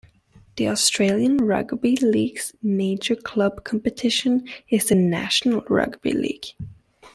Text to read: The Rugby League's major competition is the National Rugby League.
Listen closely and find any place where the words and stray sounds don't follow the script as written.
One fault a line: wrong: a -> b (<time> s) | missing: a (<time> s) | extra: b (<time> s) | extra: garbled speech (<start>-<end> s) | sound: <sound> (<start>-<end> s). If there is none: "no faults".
extra: Australian (0.7 s)
extra: club (3.1 s)